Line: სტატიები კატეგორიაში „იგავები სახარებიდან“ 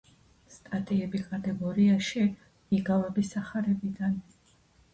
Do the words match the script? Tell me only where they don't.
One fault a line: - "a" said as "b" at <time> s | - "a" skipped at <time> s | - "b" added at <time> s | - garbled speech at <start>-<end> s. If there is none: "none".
none